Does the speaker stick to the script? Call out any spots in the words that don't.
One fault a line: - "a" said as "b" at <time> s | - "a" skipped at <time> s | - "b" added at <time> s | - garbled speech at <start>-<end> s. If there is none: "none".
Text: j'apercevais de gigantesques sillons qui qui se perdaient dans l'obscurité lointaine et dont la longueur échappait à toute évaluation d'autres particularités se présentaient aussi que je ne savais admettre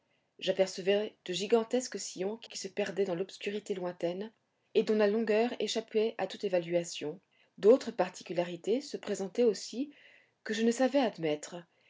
none